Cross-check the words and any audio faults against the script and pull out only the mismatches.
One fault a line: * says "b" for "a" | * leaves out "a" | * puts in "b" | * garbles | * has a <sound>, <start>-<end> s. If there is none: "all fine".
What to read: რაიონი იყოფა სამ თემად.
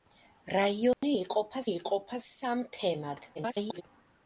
* has a dropout, 0.9-1.0 s
* puts in "იყოფა"
* garbles